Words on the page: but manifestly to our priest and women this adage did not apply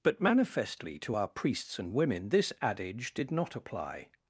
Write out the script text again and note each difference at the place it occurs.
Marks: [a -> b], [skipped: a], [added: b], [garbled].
but manifestly to our [priest -> priests] and women this adage did not apply